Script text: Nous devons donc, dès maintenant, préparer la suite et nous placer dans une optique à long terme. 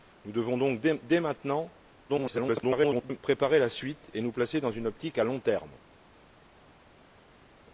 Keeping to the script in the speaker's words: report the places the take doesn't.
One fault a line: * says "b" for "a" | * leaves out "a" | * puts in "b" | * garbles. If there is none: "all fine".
* garbles